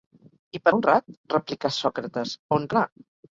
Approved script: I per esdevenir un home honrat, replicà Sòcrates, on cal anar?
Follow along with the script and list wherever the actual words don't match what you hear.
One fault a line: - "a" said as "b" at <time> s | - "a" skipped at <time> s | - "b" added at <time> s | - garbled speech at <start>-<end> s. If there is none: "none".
- "esdevenir un home" skipped at 0.7 s
- "cal" skipped at 2.7 s